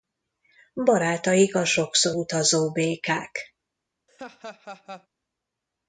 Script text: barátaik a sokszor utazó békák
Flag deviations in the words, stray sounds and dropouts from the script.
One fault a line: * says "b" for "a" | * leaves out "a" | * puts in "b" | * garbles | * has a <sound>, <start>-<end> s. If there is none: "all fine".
* has a laugh, 4.1-5.1 s